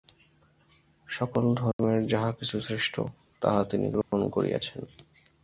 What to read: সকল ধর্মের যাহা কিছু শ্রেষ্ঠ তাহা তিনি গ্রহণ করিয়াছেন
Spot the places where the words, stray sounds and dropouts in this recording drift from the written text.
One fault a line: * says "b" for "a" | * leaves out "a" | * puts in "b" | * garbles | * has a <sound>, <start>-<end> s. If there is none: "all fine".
* has a dropout, 1.7-1.8 s
* has a dropout, 4.0-4.1 s